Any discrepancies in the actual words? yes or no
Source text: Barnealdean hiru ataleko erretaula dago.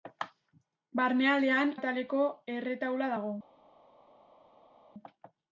yes